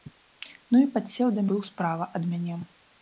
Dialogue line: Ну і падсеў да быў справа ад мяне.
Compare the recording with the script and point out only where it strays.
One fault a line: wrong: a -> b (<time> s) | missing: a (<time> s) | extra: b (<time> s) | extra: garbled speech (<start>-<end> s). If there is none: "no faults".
no faults